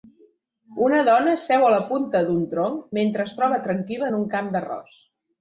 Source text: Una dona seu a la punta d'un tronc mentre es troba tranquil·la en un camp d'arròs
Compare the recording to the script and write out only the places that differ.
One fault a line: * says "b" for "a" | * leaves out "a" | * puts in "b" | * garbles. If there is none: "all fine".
all fine